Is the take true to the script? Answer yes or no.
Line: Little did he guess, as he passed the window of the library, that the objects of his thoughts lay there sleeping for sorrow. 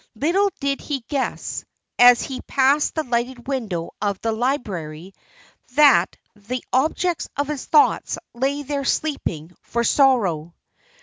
no